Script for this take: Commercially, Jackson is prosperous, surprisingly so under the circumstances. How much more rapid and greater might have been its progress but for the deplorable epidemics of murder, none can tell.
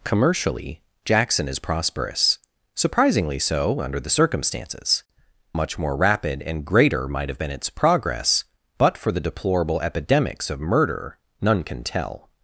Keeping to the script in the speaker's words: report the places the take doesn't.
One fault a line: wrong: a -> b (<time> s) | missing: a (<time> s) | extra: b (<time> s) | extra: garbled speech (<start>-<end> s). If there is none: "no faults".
missing: How (5.0 s)